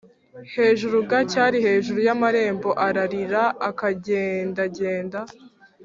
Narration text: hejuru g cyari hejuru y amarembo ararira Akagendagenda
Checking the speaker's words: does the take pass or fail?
pass